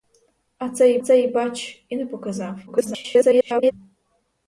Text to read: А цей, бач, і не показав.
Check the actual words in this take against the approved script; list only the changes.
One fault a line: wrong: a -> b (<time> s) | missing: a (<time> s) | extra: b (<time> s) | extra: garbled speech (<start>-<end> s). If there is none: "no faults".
extra: цей (1.0 s)
extra: garbled speech (2.7-3.7 s)